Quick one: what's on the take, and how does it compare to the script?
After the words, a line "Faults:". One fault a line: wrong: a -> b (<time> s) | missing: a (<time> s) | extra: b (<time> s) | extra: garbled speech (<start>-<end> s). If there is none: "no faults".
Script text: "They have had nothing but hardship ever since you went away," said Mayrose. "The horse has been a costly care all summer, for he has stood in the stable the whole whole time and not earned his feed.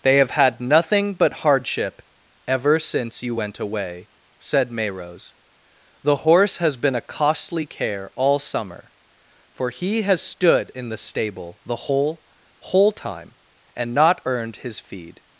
"They have had nothing but hardship ever since you went away," said Mayrose. "The horse has been a costly care all summer, for he has stood in the stable the whole whole time and not earned his feed.
Faults:
no faults